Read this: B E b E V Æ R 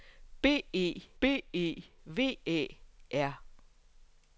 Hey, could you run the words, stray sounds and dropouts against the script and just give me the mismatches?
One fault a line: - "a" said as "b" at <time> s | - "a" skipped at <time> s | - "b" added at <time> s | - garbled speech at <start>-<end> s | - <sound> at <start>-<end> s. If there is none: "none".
none